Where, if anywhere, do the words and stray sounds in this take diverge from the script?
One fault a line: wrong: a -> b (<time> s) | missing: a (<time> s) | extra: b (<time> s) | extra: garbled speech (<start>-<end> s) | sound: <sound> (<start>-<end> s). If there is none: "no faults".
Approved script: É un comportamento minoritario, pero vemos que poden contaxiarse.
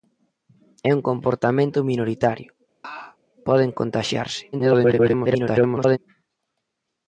missing: pero vemos que (2.5 s)
sound: laugh (2.8-3.2 s)
extra: garbled speech (4.5-6.0 s)